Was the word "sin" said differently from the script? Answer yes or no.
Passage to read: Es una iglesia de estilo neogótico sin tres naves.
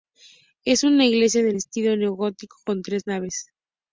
yes